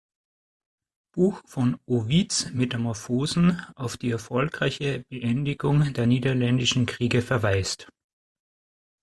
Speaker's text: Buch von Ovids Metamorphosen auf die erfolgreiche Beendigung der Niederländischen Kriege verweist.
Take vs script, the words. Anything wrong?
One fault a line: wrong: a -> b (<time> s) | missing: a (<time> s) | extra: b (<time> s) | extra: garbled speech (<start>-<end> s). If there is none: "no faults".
no faults